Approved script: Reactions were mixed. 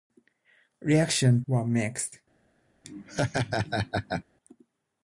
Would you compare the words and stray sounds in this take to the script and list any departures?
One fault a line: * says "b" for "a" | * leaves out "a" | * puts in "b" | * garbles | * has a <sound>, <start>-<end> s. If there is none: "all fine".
* has a laugh, 2.8-4.2 s